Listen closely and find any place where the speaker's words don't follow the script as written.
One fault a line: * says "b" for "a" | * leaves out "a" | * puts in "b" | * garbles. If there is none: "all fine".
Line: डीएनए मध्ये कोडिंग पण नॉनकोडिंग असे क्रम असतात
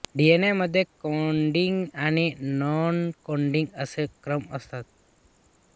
* says "आणि" for "पण"